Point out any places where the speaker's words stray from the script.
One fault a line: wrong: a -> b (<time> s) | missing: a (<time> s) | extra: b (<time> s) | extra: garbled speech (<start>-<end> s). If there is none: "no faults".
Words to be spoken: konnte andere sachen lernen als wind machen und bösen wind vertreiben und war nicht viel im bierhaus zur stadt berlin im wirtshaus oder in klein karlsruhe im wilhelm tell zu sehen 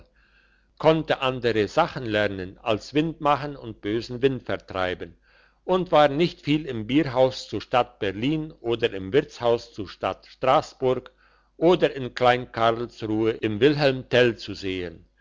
extra: oder (8.6 s)
extra: zur stadt strassburg (9.7 s)